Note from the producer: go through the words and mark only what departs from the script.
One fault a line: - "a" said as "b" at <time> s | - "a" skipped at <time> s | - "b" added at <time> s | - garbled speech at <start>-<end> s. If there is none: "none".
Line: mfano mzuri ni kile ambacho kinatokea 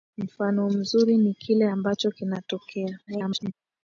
- garbled speech at 3.1-3.5 s